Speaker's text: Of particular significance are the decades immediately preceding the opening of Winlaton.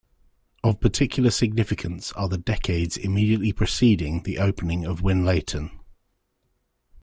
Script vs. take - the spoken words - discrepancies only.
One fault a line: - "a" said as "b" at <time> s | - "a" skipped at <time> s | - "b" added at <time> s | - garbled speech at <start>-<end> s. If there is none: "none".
none